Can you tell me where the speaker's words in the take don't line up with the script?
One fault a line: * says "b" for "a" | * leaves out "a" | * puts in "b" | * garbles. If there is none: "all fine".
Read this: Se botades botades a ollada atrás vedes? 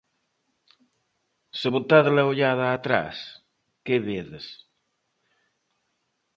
* leaves out "botades"
* puts in "que"